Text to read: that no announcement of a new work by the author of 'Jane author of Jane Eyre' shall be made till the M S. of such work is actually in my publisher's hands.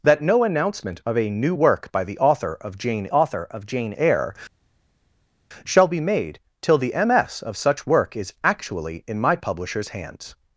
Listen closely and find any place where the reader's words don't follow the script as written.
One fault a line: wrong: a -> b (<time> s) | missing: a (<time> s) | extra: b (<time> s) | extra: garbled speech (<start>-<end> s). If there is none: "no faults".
no faults